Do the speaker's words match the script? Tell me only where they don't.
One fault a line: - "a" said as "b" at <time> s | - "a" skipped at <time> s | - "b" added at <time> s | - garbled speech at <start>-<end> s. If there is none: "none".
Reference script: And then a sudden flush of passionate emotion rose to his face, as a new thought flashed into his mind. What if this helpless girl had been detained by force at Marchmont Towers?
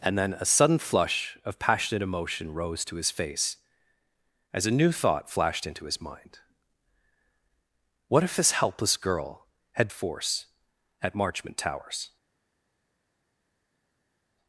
- "been detained by" skipped at 9.9 s